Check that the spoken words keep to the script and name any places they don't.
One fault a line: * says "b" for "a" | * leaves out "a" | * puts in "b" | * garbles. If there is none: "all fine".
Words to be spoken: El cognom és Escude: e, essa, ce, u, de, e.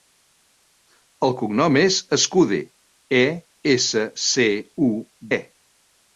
* leaves out "de"